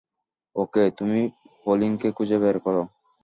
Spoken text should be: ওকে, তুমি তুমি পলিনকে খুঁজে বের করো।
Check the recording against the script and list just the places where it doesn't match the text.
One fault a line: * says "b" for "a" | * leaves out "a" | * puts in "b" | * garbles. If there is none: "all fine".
* leaves out "তুমি"